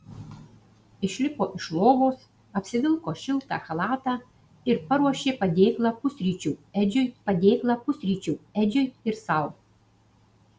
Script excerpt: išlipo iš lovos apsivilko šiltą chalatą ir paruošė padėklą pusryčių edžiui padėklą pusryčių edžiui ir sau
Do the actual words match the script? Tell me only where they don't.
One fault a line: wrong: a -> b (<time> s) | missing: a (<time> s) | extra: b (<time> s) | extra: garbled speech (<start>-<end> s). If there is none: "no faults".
no faults